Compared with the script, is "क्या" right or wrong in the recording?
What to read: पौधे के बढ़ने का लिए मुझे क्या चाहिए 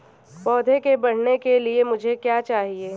right